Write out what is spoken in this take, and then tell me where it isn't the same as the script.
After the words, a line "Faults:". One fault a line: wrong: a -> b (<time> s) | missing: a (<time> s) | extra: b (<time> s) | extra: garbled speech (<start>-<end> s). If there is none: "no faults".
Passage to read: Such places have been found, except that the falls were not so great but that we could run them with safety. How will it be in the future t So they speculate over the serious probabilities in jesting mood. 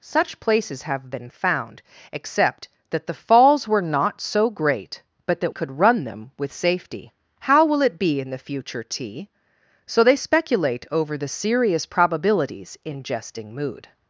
Such places have been found, except that the falls were not so great but that could run them with safety. How will it be in the future t So they speculate over the serious probabilities in jesting mood.
Faults:
missing: we (5.5 s)